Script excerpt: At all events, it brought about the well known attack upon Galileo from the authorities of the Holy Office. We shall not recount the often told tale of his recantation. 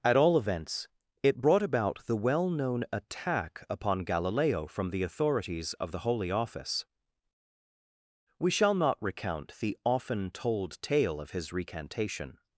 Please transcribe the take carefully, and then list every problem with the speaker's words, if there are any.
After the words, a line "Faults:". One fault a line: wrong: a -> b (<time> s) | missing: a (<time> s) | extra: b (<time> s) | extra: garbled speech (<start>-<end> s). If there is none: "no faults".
At all events, it brought about the well known attack upon Galileo from the authorities of the Holy Office. We shall not recount the often told tale of his recantation.
Faults:
no faults